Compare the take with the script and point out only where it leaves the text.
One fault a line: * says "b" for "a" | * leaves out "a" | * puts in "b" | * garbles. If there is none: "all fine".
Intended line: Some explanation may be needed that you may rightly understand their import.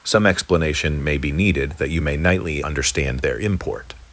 * says "nightly" for "rightly"